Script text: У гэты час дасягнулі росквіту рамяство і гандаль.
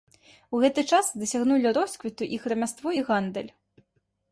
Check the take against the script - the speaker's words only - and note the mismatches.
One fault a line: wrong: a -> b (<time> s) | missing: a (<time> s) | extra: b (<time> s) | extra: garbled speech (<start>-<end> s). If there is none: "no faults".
extra: іх (2.4 s)